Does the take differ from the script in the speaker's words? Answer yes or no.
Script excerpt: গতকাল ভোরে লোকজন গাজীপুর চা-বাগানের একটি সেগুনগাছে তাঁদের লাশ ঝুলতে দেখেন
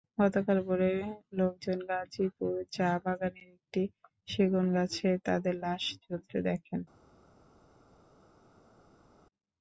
no